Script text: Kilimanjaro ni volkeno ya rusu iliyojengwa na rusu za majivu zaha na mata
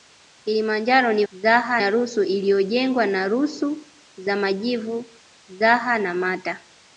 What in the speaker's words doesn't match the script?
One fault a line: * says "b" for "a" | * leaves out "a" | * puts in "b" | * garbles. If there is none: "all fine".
* says "zaha" for "volkeno"